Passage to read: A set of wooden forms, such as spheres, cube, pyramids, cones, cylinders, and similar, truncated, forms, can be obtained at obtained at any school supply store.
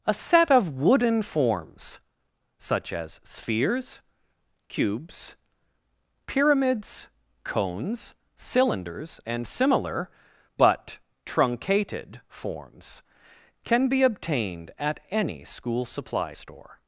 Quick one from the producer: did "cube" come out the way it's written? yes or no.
no